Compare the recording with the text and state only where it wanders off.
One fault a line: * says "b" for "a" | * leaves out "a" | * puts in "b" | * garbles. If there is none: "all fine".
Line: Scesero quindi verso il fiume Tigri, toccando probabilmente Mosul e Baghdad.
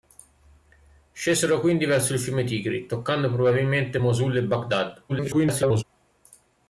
* garbles